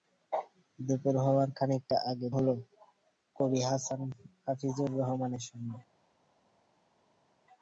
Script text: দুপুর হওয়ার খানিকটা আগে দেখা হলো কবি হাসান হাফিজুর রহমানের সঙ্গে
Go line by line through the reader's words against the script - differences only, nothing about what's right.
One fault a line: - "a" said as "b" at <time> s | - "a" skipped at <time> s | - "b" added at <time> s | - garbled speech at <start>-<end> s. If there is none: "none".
- "দেখা" skipped at 2.3 s